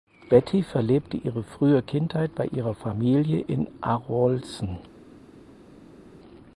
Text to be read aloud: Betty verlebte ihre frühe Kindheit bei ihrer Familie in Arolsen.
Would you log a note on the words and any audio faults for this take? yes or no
no